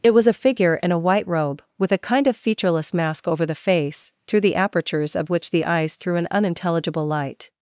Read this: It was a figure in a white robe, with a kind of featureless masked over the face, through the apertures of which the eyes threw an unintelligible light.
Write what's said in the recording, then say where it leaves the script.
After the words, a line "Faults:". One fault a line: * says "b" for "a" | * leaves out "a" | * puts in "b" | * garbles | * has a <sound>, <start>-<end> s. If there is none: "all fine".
It was a figure in a white robe, with a kind of featureless mask over the face, through the apertures of which the eyes threw an unintelligible light.
Faults:
* says "mask" for "masked"